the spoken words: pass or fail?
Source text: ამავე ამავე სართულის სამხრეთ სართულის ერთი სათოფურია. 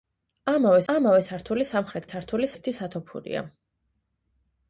pass